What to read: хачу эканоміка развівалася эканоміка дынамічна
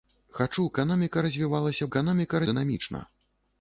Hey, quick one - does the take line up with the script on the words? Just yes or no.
yes